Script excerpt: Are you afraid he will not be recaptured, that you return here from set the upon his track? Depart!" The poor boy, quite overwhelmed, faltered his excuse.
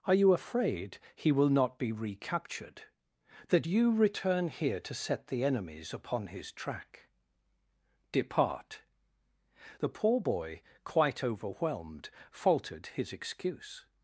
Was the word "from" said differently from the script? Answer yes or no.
yes